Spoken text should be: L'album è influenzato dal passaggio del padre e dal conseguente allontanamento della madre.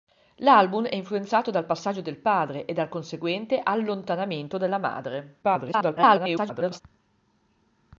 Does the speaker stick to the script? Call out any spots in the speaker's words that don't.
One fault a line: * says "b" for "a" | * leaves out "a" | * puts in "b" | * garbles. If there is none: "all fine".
* garbles